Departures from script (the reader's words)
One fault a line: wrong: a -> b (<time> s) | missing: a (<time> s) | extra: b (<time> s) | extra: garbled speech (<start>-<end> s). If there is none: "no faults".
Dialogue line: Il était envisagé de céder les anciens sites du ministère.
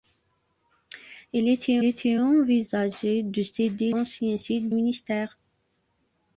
extra: était (1.8 s)
missing: les (3.9 s)
missing: du (4.7 s)